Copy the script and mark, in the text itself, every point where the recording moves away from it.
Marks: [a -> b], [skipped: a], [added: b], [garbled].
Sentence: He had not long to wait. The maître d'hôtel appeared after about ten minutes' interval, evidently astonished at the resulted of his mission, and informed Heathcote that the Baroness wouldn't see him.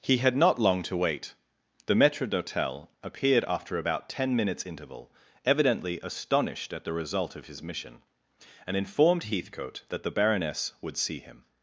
He had not long to wait. The maître d'hôtel appeared after about ten minutes' interval, evidently astonished at the [resulted -> result] of his mission, and informed Heathcote that the Baroness [wouldn't -> would] see him.